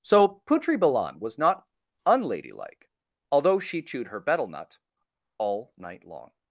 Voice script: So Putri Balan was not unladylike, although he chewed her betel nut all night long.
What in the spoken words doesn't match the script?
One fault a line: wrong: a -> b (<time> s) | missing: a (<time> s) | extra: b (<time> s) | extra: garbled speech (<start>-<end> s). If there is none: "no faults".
wrong: he -> she (3.6 s)